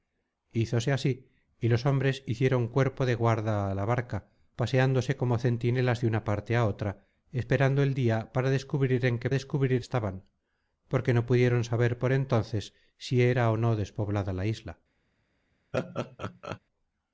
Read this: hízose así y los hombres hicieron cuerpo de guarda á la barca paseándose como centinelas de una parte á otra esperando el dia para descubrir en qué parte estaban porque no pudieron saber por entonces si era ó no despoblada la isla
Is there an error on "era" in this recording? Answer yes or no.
no